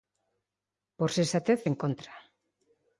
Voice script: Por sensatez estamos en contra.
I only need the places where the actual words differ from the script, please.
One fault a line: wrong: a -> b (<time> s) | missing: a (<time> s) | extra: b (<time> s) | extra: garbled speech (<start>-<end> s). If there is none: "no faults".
missing: estamos (1.6 s)